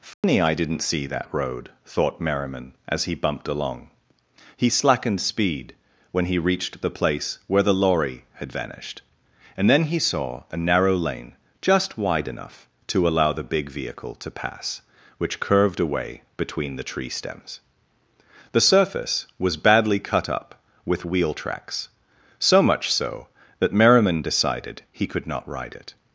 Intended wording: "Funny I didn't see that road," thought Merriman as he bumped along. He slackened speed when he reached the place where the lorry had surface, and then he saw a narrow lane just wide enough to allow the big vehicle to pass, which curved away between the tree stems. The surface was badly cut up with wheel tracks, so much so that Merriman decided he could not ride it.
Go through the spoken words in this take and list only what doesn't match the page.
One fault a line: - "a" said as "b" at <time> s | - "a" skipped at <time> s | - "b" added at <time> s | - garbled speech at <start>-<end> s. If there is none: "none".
- "surface" said as "vanished" at 8.5 s